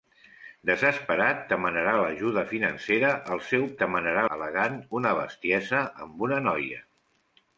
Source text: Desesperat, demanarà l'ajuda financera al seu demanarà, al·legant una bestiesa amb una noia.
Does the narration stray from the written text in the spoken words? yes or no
no